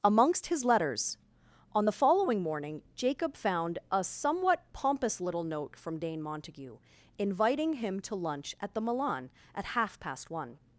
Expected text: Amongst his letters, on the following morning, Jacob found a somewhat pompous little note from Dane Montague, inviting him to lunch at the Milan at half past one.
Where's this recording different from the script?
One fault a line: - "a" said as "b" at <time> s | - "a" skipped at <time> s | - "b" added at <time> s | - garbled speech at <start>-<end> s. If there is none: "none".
none